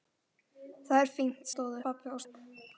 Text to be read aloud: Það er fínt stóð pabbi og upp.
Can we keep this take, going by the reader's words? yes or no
yes